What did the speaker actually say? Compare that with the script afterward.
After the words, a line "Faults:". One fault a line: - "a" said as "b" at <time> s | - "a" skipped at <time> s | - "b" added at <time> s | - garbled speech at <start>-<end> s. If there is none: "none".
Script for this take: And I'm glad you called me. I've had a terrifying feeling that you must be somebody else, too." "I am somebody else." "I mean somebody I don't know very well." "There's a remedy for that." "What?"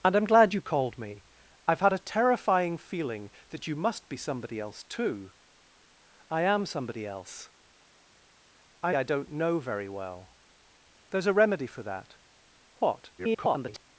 And I'm glad you called me. I've had a terrifying feeling that you must be somebody else, too." "I am somebody else." "I I don't know very well." "There's a remedy for that." "What?" [garbled]
Faults:
- "mean somebody" skipped at 8.9 s
- garbled speech at 13.2-13.8 s